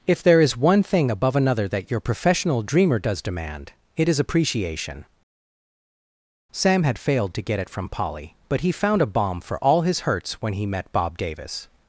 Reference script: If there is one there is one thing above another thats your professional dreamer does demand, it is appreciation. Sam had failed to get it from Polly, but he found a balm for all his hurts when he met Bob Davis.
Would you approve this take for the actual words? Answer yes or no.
no